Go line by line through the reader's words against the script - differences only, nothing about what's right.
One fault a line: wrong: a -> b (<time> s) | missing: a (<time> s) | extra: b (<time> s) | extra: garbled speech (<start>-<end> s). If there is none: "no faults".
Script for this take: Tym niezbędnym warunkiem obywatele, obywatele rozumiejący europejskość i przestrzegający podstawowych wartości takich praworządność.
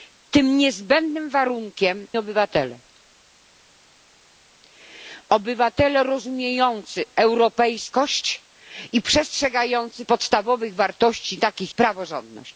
no faults